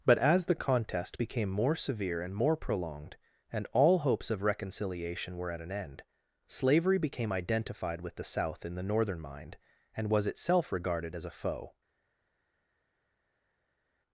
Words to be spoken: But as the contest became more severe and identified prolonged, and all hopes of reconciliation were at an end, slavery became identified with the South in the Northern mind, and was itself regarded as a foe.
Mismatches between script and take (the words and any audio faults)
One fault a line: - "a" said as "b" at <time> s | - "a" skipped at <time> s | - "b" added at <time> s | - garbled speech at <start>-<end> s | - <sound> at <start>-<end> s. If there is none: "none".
- "identified" said as "more" at 2.3 s